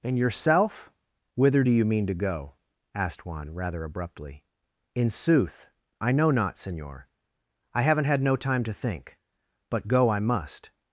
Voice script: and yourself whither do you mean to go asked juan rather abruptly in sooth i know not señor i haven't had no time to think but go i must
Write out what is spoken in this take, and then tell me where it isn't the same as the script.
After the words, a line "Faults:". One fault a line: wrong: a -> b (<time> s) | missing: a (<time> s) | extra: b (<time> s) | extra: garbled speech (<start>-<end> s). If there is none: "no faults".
and yourself whither do you mean to go asked juan rather abruptly in sooth i know not señor i haven't had no time to think but go i must
Faults:
no faults